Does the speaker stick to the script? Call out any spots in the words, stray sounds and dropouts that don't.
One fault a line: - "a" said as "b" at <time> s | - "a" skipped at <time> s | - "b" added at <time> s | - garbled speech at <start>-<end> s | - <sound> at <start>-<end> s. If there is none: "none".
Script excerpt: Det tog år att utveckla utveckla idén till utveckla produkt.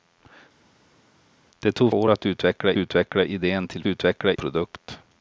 none